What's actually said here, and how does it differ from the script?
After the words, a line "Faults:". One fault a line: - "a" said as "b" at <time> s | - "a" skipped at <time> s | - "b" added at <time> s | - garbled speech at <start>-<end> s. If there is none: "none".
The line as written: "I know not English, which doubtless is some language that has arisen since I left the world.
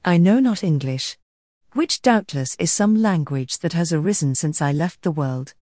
"I know not English, which doubtless is some language that has arisen since I left the world.
Faults:
none